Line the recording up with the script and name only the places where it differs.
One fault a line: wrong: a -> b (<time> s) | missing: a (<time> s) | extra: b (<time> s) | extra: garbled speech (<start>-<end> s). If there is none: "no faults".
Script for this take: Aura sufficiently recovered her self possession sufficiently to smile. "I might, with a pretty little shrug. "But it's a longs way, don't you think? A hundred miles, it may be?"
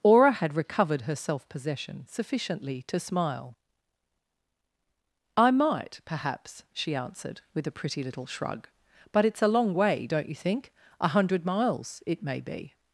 wrong: sufficiently -> had (0.3 s)
extra: perhaps she answered (6.0 s)
wrong: longs -> long (9.5 s)